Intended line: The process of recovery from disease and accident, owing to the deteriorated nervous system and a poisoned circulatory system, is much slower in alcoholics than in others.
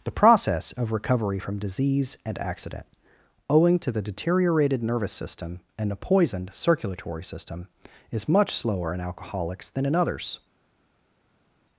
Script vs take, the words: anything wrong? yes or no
no